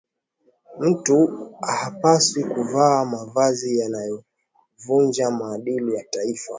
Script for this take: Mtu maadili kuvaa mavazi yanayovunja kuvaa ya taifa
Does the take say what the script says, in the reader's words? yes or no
no